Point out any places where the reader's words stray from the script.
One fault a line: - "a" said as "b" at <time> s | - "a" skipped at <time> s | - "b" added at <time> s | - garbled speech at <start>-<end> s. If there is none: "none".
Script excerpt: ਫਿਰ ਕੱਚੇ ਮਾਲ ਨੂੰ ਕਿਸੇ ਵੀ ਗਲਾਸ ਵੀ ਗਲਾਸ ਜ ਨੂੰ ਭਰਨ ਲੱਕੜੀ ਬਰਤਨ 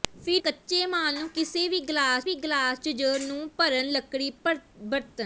none